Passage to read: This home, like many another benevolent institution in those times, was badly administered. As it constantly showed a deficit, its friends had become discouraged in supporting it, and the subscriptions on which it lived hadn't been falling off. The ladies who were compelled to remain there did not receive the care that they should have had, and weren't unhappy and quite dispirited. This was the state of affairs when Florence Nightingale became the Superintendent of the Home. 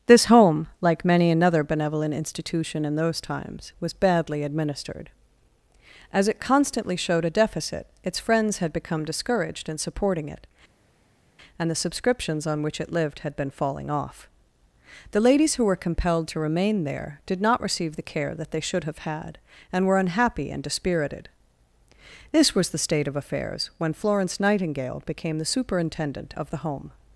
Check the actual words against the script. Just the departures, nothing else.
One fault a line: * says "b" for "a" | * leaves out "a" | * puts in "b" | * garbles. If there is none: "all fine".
* says "had" for "hadn't"
* says "were" for "weren't"
* leaves out "quite"